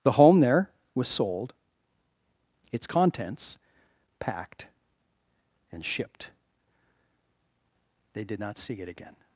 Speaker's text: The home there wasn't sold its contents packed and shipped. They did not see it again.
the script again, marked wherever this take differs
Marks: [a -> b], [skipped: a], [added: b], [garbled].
The home there [wasn't -> was] sold its contents packed and shipped. They did not see it again.